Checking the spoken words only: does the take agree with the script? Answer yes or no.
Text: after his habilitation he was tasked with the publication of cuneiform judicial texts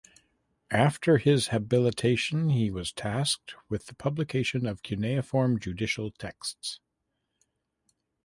yes